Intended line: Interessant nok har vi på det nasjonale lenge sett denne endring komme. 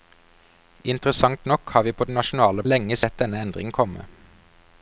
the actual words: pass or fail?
pass